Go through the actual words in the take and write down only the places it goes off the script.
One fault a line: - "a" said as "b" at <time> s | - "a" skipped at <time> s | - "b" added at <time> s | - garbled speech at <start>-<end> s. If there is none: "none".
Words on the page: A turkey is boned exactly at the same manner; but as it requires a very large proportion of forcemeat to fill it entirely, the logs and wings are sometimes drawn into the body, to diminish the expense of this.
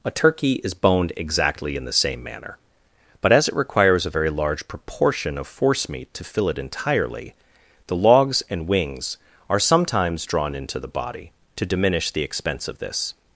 - "at" said as "in" at 1.8 s